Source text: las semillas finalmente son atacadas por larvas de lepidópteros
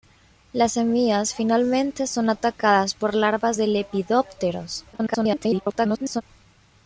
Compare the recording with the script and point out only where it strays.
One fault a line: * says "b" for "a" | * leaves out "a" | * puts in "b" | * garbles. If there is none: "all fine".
* garbles